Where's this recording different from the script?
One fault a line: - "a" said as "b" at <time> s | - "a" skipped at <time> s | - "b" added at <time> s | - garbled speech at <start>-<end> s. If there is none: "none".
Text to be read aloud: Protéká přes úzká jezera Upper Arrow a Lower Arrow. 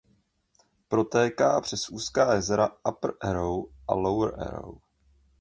none